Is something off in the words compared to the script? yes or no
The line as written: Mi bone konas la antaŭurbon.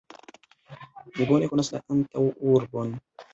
no